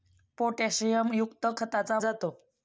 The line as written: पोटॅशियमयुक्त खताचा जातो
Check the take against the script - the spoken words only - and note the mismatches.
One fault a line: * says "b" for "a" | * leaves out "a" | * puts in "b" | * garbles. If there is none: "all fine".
all fine